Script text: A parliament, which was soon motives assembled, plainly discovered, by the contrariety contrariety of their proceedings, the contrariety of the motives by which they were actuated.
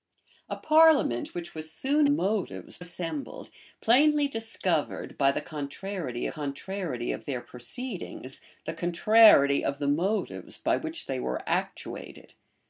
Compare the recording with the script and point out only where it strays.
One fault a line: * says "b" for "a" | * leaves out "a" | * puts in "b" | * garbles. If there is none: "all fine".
all fine